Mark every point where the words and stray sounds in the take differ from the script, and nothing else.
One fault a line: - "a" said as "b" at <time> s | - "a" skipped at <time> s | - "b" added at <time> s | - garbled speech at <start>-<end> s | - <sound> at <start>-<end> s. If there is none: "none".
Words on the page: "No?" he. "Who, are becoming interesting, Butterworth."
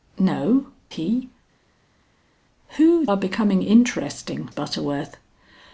none